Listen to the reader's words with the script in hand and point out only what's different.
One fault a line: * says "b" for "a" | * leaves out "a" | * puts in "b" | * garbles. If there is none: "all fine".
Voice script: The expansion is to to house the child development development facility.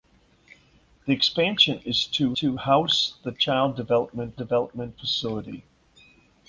all fine